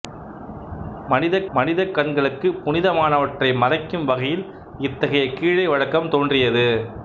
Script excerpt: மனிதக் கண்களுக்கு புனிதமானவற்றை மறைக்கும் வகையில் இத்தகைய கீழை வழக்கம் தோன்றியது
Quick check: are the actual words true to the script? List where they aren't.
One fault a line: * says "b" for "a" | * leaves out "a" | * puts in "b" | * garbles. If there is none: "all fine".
* puts in "மனிதக்"